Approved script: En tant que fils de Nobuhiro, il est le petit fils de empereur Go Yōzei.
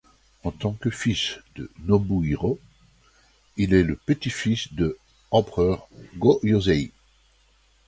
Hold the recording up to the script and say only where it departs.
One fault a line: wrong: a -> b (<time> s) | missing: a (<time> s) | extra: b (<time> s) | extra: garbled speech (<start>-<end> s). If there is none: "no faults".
no faults